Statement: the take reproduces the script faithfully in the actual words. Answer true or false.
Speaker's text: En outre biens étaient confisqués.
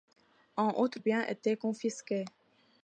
true